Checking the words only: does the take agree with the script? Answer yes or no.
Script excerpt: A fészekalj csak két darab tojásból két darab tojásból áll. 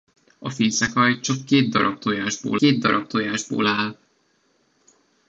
yes